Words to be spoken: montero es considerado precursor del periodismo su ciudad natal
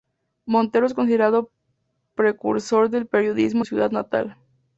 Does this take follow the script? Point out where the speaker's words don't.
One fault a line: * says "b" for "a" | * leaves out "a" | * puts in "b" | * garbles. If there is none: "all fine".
all fine